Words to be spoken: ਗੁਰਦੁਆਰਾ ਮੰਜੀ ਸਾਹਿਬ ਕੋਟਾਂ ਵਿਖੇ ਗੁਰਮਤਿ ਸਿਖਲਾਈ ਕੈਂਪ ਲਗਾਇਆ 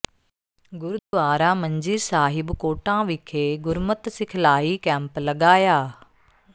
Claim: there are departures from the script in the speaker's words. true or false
false